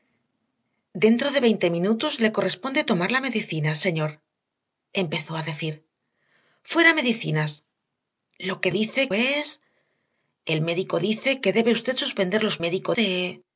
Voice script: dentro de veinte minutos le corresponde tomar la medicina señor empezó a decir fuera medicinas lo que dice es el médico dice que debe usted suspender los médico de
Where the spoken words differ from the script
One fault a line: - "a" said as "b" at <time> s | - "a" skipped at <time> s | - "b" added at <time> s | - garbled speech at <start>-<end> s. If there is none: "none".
none